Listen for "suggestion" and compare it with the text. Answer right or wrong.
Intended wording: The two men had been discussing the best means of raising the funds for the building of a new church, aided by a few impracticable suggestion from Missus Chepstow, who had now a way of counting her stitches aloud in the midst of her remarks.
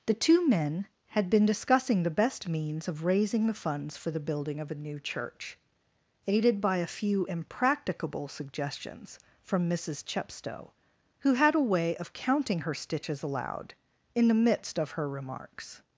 wrong